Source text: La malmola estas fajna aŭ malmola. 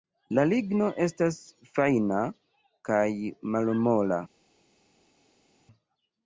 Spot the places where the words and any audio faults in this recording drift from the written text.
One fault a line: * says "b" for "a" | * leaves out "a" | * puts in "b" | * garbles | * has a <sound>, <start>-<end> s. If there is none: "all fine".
* says "ligno" for "malmola"
* says "kaj" for "aŭ"